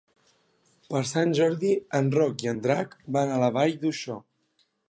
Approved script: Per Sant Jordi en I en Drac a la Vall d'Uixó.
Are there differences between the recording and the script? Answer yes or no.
yes